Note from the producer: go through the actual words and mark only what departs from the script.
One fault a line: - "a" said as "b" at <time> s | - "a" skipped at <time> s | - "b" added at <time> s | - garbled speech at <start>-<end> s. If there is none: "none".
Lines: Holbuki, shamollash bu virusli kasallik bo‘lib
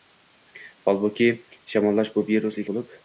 - "kasallik" skipped at 2.7 s